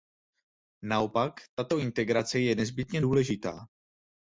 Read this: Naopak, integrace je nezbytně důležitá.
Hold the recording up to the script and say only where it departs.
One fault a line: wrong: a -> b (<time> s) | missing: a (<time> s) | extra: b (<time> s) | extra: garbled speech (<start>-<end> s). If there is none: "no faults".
extra: tato (1.6 s)